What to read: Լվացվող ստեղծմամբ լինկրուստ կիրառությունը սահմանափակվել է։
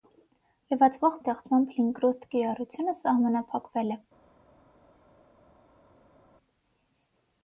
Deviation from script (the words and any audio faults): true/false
false